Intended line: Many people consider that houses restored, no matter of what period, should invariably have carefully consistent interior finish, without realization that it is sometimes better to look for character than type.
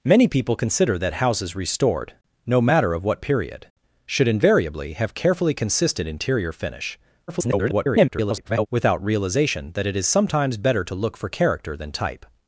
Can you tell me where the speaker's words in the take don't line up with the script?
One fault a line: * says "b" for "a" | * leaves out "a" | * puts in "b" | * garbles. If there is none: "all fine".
* garbles